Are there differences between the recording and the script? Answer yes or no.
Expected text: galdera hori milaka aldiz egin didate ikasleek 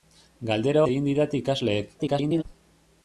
yes